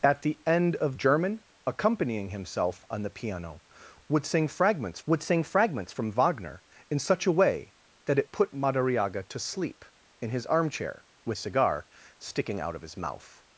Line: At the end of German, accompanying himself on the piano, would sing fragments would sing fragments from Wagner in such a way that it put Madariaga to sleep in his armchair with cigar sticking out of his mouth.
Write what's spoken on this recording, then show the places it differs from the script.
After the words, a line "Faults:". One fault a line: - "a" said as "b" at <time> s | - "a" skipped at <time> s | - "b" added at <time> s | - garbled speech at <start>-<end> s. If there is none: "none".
At the end of German, accompanying himself on the piano, would sing fragments would sing fragments from Wagner in such a way that it put Madariaga to sleep in his armchair with cigar sticking out of his mouth.
Faults:
none